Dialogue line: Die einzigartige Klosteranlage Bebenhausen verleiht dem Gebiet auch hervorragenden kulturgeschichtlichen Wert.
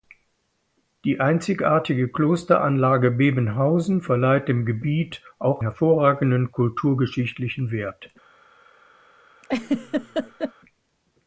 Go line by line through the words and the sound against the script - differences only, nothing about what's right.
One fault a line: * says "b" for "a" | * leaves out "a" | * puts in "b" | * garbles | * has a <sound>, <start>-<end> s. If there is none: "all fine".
* has a laugh, 9.4-10.5 s